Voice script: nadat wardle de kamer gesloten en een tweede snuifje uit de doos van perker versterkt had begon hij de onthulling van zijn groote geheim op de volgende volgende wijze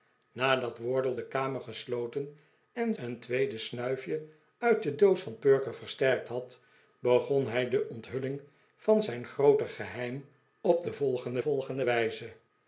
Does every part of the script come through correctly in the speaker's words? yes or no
yes